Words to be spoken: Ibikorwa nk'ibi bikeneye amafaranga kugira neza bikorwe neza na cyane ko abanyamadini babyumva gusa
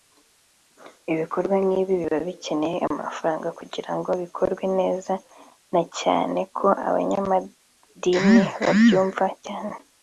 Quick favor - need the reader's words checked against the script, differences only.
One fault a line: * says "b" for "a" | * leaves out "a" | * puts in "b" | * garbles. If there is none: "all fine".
* puts in "biba"
* says "ngo" for "neza"
* says "cyane" for "gusa"